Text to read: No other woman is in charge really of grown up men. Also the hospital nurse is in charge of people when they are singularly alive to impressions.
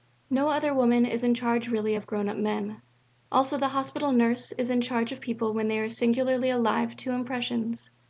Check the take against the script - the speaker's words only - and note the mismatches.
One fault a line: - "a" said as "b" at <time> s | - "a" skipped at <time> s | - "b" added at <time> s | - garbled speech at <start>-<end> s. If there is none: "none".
none